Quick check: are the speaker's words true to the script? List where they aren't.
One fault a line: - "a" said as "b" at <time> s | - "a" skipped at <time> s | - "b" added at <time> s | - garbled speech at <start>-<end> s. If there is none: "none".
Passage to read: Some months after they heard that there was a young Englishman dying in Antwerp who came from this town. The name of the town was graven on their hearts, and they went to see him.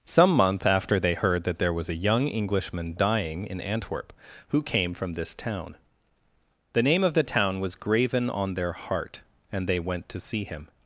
- "months" said as "month" at 0.3 s
- "hearts" said as "heart" at 8.7 s